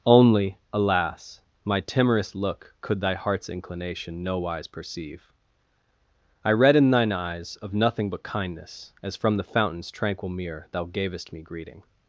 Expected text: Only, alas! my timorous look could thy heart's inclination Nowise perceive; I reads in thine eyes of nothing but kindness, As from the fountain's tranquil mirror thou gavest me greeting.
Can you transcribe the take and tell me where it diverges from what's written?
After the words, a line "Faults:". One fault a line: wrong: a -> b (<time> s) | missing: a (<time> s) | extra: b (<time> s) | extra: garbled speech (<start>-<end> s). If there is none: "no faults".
Only, alas! my timorous look could thy heart's inclination Nowise perceive; I read in thine eyes of nothing but kindness, As from the fountain's tranquil mirror thou gavest me greeting.
Faults:
wrong: reads -> read (6.5 s)